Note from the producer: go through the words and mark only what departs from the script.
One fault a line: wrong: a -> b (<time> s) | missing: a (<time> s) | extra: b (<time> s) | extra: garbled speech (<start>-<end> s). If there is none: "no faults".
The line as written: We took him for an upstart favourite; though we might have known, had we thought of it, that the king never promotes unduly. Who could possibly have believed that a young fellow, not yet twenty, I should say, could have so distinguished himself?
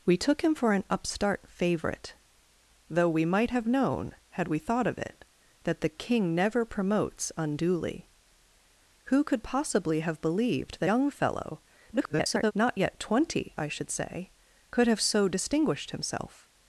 missing: a (10.9 s)
extra: garbled speech (11.9-12.5 s)